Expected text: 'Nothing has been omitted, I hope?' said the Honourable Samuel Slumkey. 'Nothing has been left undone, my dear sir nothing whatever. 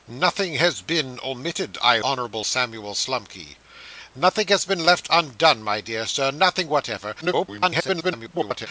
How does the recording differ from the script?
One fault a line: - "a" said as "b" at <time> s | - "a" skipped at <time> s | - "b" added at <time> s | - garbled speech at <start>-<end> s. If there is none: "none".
- "hope said the" skipped at 2.0 s
- garbled speech at 7.2-8.7 s